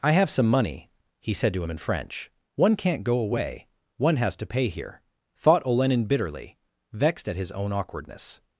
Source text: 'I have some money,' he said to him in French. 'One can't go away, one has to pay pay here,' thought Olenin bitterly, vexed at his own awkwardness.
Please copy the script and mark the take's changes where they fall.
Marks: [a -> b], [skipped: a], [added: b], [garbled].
'I have some money,' he said to him in French. 'One can't go away, one has to pay [skipped: pay] here,' thought Olenin bitterly, vexed at his own awkwardness.